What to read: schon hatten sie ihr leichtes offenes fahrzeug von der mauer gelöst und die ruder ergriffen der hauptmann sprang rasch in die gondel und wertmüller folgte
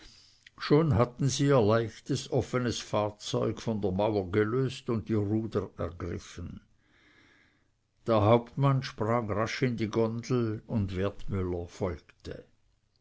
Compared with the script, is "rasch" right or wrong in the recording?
right